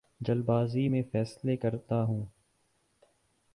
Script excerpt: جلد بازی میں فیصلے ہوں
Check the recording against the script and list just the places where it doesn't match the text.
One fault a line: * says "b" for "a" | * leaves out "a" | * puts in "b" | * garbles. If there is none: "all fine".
* puts in "کرتا"